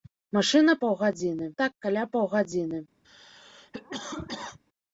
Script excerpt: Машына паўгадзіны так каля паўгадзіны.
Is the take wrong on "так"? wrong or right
right